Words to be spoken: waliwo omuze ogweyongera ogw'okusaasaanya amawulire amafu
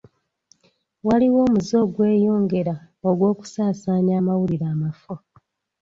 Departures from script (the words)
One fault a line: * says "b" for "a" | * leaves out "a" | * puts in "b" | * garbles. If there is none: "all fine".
all fine